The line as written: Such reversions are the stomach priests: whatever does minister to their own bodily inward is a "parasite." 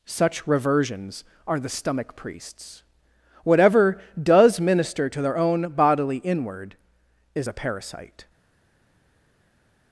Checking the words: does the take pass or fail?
pass